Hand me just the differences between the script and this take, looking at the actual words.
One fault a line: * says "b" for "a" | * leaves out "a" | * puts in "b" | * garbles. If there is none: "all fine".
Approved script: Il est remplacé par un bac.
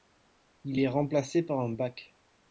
all fine